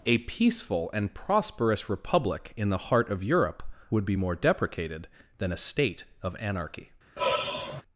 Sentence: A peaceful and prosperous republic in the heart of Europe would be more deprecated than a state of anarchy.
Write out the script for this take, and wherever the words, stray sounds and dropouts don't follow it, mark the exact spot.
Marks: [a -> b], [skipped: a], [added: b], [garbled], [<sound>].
A peaceful and prosperous republic in the heart of Europe would be more deprecated than a state of anarchy. [sigh]